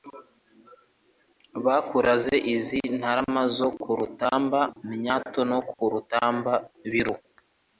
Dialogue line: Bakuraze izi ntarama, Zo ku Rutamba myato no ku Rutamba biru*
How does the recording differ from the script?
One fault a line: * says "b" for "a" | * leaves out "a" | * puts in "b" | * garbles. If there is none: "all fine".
all fine